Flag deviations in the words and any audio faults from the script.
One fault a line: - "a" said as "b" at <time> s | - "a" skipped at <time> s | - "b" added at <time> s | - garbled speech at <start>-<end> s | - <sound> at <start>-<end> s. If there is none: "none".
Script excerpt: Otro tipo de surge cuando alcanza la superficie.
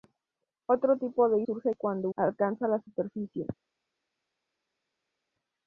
none